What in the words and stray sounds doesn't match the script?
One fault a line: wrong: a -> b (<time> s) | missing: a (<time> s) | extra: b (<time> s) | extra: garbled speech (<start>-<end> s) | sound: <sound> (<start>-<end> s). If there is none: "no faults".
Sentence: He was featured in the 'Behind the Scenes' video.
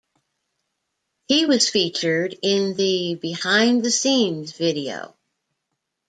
no faults